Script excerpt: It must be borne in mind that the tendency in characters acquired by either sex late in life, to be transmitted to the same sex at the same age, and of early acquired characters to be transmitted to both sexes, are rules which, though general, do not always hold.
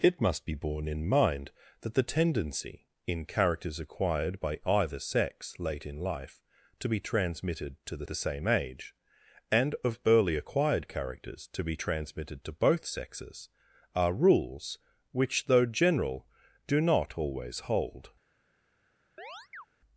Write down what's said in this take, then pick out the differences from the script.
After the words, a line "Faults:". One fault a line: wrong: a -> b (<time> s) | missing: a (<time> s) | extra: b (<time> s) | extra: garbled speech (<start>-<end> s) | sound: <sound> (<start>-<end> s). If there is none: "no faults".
It must be borne in mind that the tendency in characters acquired by either sex late in life, to be transmitted to the the same age, and of early acquired characters to be transmitted to both sexes, are rules which, though general, do not always hold.
Faults:
missing: same sex at (8.1 s)
sound: chirp (19.2-19.7 s)